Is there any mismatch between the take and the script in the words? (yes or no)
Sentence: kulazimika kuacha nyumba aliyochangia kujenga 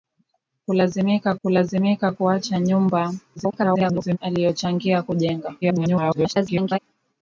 yes